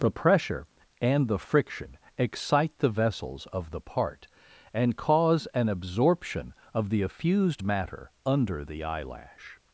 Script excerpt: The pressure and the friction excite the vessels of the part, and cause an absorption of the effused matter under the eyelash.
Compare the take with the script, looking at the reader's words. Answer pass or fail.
pass